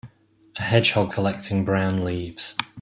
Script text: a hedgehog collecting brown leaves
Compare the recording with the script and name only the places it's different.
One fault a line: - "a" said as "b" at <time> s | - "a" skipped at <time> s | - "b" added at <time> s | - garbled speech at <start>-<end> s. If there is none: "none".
none